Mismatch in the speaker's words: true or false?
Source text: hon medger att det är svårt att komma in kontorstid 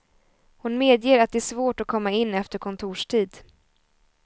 true